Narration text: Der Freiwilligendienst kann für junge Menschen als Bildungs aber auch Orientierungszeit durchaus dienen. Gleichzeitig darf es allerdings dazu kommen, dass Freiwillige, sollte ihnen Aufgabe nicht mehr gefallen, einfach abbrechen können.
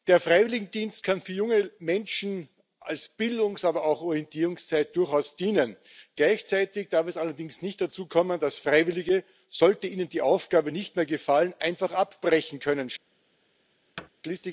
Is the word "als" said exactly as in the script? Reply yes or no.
yes